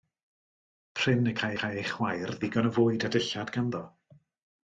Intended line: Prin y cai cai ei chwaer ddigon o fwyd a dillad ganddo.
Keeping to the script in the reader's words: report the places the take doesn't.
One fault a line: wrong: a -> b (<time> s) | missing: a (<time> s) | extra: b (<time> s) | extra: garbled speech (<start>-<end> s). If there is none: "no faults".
no faults